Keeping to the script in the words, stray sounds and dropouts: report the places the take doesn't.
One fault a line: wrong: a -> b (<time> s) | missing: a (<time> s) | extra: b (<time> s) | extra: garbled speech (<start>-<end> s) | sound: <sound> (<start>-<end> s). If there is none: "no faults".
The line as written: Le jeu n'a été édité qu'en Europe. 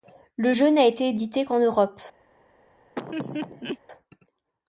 sound: laugh (3.0-3.8 s)